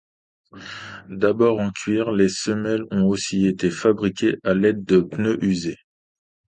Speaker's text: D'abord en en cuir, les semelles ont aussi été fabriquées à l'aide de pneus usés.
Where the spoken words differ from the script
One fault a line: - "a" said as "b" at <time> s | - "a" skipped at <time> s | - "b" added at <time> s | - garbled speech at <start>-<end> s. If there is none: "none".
- "en" skipped at 1.7 s